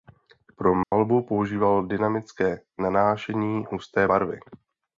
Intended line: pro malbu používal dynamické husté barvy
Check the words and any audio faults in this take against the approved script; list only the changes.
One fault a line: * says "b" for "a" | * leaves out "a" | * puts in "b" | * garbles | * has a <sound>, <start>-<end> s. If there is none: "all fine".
* has a dropout, 0.8-0.9 s
* puts in "nanášení"